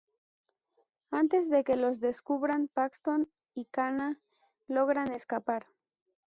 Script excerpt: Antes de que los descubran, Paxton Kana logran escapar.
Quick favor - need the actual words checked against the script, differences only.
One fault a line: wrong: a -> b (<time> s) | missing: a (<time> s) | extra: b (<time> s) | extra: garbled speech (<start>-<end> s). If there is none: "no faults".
extra: y (3.5 s)